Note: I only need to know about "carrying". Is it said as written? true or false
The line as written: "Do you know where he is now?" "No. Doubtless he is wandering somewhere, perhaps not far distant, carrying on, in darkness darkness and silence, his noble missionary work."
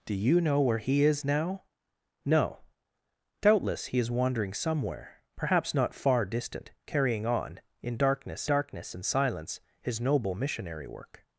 true